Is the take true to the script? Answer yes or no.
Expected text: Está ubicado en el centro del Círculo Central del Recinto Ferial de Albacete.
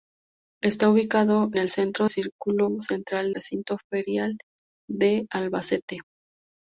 no